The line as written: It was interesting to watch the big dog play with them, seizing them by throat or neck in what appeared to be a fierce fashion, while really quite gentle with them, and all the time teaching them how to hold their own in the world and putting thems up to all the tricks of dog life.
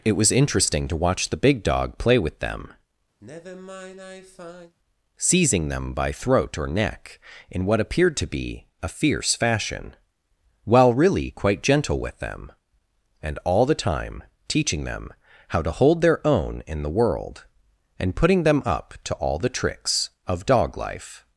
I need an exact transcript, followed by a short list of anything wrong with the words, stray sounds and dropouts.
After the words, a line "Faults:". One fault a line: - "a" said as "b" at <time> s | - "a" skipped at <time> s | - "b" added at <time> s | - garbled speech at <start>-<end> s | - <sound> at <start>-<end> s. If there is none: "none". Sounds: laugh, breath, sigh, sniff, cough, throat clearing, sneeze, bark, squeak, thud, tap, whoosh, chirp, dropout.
It was interesting to watch the big dog play with them, seizing them by throat or neck in what appeared to be a fierce fashion, while really quite gentle with them, and all the time teaching them how to hold their own in the world and putting them up to all the tricks of dog life.
Faults:
- sigh at 3.2-4.7 s
- "thems" said as "them" at 18.4 s